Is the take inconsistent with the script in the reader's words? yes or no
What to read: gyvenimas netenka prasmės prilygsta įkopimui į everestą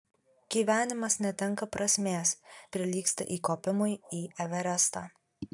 no